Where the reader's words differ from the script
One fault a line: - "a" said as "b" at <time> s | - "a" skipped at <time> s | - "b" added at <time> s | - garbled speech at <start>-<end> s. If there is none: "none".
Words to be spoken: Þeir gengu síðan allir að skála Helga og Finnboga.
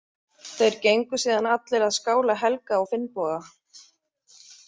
none